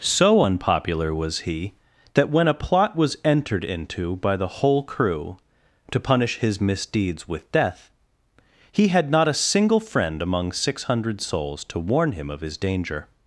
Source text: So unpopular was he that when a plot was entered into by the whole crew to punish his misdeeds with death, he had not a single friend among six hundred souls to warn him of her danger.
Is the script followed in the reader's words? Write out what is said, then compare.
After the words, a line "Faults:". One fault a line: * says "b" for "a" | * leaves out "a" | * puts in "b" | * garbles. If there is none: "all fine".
So unpopular was he that when a plot was entered into by the whole crew to punish his misdeeds with death, he had not a single friend among six hundred souls to warn him of his danger.
Faults:
* says "his" for "her"